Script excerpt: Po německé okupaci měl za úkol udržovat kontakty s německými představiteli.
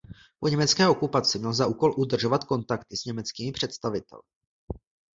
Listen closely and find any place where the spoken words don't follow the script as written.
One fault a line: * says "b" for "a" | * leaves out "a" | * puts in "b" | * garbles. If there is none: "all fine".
all fine